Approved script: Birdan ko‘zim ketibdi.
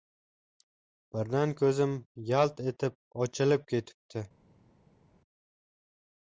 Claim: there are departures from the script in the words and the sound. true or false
true